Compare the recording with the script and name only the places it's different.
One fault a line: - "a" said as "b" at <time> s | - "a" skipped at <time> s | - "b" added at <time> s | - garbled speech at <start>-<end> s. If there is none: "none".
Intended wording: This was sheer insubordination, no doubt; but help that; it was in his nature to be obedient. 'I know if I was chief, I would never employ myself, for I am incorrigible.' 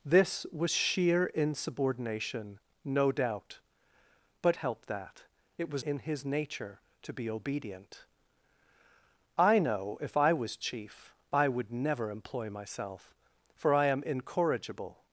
none